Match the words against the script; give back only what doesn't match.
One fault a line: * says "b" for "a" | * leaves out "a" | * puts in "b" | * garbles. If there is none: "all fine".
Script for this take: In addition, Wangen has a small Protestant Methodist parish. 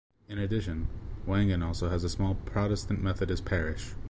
* puts in "also"